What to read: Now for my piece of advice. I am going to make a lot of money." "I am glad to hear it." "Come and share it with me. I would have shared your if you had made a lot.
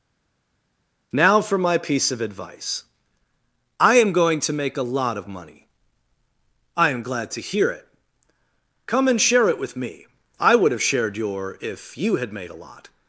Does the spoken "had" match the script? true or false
true